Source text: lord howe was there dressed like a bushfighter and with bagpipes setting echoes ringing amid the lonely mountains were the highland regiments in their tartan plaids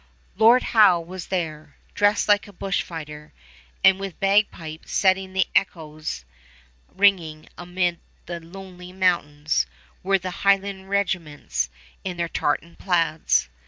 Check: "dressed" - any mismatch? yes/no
no